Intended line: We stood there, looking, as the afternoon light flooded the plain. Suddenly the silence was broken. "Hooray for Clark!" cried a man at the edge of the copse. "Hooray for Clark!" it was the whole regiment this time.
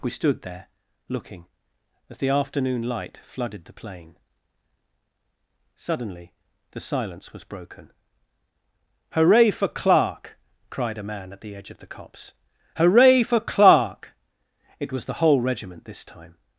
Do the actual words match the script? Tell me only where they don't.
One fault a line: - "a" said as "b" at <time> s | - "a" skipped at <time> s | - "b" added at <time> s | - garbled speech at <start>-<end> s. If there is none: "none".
none